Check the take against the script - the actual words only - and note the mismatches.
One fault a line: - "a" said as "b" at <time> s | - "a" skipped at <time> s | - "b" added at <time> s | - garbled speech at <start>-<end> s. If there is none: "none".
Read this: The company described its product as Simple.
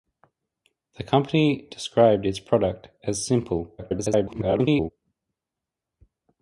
- garbled speech at 3.8-4.9 s